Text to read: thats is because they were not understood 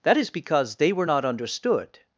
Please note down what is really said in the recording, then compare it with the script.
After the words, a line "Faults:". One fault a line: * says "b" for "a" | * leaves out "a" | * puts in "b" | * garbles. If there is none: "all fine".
that is because they were not understood
Faults:
* says "that" for "thats"